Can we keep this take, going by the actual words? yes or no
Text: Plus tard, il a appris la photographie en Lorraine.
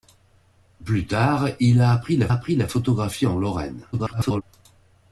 no